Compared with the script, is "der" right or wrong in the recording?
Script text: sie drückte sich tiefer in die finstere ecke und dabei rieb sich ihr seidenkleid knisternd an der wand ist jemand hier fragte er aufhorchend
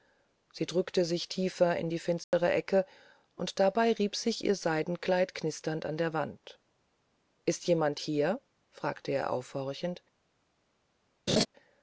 right